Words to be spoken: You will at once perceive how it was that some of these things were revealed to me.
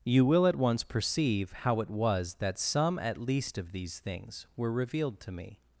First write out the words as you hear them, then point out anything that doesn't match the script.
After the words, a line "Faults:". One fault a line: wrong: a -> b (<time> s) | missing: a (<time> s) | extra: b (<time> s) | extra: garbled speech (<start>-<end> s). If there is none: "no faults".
You will at once perceive how it was that some at least of these things were revealed to me.
Faults:
extra: at least (3.0 s)